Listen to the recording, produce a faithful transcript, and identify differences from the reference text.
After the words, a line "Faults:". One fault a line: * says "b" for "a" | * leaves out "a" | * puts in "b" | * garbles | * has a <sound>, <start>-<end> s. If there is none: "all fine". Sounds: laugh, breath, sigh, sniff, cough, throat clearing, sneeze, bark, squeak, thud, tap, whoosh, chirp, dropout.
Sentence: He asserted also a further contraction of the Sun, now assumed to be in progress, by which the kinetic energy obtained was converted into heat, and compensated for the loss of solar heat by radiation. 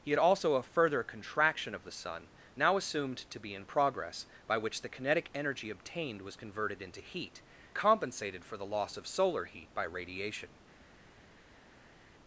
He also a further contraction of the Sun, now assumed to be in progress, by which the kinetic energy obtained was converted into heat, compensated for the loss of solar heat by radiation.
Faults:
* leaves out "asserted"
* leaves out "and"